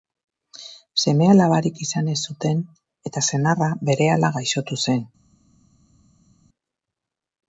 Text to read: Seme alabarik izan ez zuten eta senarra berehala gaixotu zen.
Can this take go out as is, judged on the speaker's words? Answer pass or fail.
pass